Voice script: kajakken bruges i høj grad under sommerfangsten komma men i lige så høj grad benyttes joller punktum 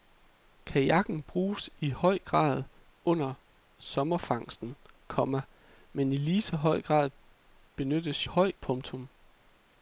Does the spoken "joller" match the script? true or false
false